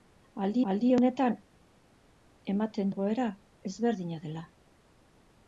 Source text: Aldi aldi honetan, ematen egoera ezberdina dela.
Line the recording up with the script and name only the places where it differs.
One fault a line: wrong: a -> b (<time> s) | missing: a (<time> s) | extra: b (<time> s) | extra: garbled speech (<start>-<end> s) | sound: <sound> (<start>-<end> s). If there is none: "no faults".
no faults